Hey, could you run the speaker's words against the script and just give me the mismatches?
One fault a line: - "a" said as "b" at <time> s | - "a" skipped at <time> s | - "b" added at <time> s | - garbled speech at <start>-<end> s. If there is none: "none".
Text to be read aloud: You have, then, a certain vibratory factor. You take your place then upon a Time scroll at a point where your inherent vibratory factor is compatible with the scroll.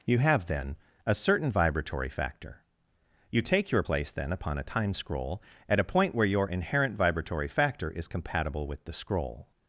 none